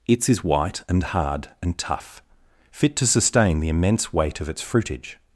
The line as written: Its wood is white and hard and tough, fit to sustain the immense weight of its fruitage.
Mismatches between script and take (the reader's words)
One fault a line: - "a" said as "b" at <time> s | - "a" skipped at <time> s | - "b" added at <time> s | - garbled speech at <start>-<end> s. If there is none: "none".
- "wood" skipped at 0.3 s